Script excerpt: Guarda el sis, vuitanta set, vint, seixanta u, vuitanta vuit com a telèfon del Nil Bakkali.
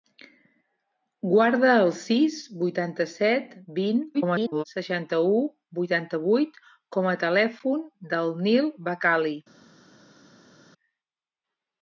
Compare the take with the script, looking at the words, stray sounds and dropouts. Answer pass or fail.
fail